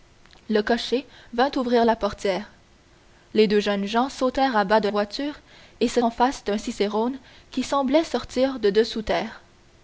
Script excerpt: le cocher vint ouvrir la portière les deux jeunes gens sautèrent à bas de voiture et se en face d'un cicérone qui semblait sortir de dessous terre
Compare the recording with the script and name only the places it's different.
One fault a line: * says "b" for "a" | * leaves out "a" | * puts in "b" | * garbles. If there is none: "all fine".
all fine